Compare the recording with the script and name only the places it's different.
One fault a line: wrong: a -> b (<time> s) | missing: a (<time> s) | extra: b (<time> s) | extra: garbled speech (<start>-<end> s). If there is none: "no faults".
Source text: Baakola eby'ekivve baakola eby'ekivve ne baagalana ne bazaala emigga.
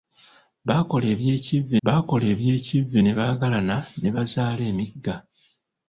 no faults